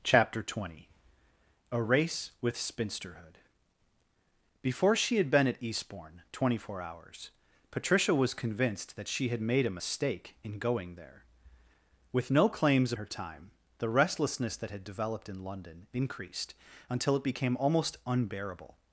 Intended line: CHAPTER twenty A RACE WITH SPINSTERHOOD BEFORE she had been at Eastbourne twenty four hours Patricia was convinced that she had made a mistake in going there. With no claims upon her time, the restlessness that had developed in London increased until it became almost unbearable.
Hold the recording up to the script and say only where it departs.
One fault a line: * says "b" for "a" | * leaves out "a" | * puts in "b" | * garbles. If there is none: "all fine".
* leaves out "upon"